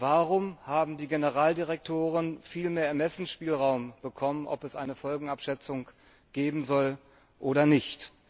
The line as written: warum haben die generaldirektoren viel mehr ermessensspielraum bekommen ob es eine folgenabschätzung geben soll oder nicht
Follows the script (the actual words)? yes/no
yes